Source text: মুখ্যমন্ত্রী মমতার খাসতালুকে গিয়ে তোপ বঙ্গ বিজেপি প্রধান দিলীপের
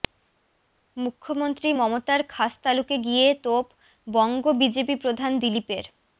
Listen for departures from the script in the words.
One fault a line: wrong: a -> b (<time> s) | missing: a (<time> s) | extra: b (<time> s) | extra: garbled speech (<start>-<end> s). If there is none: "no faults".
no faults